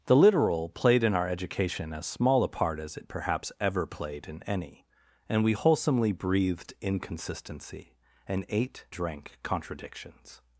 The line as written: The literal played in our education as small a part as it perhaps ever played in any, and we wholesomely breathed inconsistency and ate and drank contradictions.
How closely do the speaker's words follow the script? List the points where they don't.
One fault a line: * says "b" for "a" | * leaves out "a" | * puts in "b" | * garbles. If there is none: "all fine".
* leaves out "and"